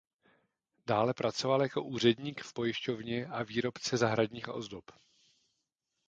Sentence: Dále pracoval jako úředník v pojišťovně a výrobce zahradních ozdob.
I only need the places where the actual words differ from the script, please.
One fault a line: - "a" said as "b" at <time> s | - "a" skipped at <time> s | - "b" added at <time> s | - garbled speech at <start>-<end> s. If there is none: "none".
none